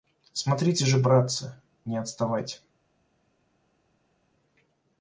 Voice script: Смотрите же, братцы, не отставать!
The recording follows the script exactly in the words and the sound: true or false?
true